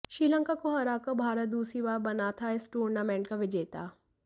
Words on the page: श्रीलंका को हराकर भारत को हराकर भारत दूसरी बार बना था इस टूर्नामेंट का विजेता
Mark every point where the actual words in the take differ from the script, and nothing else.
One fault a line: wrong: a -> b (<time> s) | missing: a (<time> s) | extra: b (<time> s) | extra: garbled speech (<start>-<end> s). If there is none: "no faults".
missing: को हराकर भारत (1.5 s)